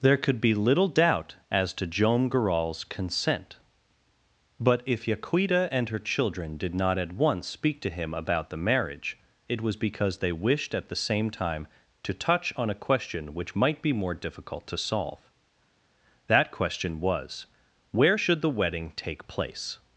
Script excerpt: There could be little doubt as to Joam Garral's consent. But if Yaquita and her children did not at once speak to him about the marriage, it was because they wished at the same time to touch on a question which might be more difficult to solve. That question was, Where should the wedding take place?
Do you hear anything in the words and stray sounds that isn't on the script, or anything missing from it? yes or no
no